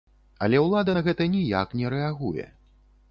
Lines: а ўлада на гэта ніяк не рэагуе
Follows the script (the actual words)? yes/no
no